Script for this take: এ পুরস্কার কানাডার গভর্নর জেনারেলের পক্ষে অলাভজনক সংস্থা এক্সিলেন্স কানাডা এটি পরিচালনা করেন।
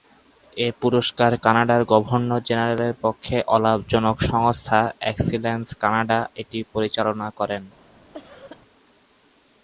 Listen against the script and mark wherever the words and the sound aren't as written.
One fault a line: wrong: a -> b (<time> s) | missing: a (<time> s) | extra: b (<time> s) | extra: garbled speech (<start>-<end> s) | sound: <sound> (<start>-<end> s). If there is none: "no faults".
sound: cough (8.1-8.6 s)